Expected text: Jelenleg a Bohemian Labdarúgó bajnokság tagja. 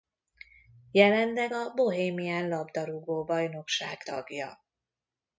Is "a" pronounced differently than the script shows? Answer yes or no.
no